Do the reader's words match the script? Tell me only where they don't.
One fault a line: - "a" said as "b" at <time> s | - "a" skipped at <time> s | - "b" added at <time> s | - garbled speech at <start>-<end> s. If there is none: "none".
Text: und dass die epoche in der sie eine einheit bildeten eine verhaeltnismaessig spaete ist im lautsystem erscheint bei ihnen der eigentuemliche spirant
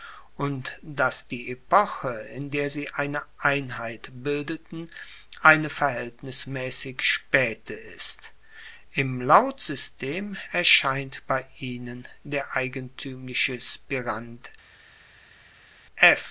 none